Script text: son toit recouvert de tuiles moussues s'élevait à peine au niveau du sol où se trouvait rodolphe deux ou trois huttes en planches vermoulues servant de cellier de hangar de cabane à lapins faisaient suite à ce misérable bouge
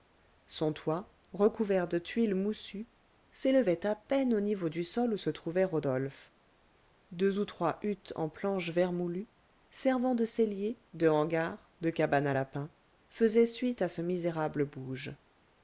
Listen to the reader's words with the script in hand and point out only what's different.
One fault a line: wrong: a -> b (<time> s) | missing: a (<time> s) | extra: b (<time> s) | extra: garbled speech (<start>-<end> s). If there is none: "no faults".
no faults